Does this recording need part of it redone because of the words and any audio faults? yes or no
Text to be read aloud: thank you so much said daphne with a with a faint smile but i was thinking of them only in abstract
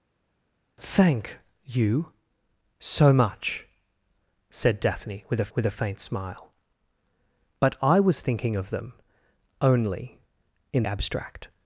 no